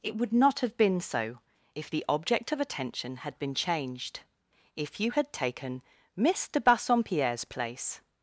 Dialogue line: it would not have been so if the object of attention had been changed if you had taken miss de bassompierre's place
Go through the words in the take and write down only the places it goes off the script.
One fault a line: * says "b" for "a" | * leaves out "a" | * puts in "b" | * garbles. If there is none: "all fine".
all fine